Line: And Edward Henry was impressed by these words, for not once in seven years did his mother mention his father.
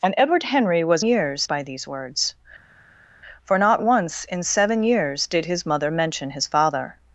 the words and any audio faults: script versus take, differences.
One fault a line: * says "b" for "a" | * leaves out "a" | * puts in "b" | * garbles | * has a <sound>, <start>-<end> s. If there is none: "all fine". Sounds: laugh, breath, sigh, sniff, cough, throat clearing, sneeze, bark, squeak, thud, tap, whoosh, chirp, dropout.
* says "years" for "impressed"